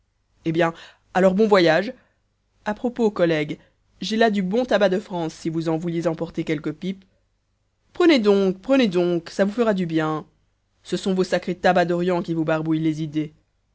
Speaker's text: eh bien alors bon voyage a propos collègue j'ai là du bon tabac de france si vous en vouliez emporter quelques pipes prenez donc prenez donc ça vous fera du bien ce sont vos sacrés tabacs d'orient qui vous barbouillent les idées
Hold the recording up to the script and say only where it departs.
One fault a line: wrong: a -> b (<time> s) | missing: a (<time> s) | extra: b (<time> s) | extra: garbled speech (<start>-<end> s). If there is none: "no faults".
no faults